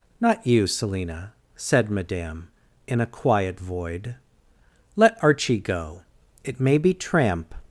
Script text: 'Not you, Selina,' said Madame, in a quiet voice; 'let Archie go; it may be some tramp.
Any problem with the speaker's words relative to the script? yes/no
yes